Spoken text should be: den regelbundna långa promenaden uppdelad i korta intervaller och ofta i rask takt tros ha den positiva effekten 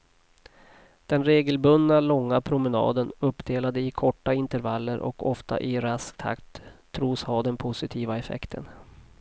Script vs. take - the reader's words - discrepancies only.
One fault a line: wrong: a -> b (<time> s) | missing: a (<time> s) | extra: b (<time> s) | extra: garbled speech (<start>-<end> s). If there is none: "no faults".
no faults